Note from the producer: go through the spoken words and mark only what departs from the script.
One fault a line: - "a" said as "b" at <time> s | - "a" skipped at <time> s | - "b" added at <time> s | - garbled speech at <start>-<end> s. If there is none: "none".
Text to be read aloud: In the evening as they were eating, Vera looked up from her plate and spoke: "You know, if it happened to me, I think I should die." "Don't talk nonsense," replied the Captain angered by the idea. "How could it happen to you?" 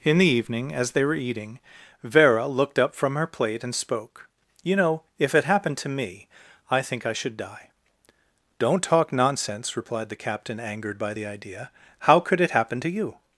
none